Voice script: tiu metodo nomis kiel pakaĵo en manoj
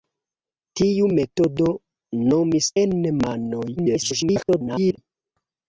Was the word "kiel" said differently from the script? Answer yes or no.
yes